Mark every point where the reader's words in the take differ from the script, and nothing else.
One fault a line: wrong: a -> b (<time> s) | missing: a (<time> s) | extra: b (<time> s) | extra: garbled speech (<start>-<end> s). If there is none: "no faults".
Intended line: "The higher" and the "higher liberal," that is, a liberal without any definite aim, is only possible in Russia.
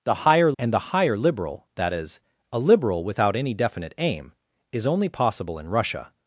no faults